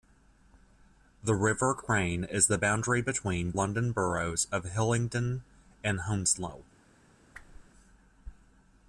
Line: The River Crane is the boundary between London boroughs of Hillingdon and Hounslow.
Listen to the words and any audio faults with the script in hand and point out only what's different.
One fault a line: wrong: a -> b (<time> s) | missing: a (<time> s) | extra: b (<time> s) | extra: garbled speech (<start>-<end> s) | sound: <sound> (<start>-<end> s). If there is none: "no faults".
sound: whoosh (7.3-7.7 s)